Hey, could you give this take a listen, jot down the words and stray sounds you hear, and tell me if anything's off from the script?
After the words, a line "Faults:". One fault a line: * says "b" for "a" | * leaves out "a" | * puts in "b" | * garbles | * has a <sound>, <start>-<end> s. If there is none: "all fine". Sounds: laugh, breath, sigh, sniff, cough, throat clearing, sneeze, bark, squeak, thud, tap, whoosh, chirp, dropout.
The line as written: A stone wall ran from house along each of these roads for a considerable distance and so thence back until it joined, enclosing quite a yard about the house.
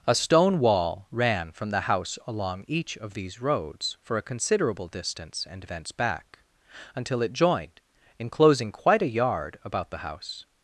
A stone wall ran from the house along each of these roads for a considerable distance and thence back until it joined, enclosing quite a yard about the house.
Faults:
* puts in "the"
* leaves out "so"